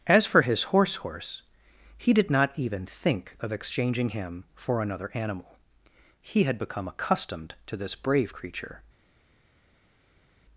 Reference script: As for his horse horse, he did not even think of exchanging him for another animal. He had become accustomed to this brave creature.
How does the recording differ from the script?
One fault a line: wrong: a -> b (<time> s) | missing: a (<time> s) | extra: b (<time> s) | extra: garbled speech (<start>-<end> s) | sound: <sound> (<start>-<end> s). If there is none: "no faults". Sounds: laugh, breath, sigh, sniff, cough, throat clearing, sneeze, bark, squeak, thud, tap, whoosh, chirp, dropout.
no faults